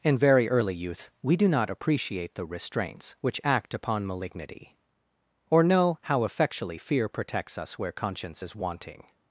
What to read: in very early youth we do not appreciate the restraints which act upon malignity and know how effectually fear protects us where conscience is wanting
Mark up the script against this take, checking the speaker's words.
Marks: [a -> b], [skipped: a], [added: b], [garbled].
in very early youth we do not appreciate the restraints which act upon malignity [and -> or] know how effectually fear protects us where conscience is wanting